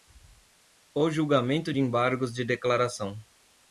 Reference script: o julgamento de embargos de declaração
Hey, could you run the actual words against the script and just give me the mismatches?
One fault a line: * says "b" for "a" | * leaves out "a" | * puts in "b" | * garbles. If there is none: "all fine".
all fine